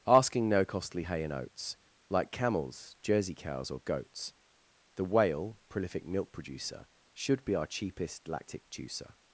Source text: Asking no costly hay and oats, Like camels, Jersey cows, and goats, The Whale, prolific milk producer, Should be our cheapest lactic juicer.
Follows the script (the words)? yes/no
no